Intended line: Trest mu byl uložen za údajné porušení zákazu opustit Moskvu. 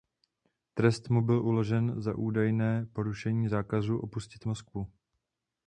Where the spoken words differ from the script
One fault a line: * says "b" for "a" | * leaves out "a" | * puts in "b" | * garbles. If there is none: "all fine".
all fine